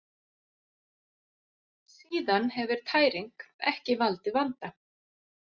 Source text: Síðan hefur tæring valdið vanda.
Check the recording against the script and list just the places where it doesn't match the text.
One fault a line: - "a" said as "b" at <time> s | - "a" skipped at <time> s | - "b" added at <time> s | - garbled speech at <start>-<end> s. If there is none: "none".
- "ekki" added at 3.7 s